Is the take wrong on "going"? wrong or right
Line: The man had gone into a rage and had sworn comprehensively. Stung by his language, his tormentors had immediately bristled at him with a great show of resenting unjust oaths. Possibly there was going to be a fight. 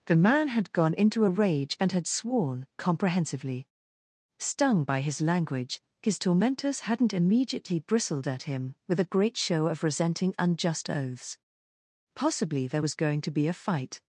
right